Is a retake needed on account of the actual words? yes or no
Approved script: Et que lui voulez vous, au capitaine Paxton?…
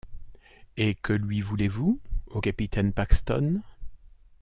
no